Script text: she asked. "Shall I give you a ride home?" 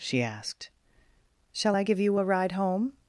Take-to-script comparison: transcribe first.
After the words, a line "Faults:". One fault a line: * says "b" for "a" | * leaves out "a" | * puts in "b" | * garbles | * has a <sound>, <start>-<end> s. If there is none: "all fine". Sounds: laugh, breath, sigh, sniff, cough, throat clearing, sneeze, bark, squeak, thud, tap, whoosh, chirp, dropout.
she asked. "Shall I give you a ride home?"
Faults:
all fine